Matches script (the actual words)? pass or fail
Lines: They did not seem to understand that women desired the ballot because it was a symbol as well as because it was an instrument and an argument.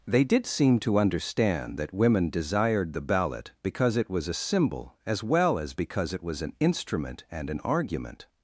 fail